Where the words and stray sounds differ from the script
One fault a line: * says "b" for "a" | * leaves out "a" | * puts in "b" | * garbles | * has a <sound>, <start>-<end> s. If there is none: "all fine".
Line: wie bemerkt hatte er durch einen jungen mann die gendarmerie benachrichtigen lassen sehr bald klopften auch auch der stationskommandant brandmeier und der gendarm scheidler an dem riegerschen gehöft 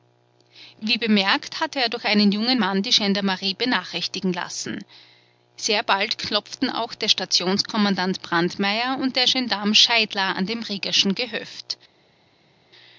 * leaves out "auch"